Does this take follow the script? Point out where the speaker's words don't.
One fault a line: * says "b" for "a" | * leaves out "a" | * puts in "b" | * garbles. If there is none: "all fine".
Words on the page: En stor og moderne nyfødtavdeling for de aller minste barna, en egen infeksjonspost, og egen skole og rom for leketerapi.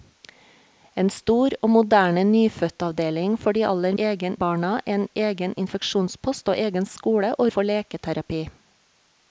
* says "egen" for "minste"
* leaves out "rom"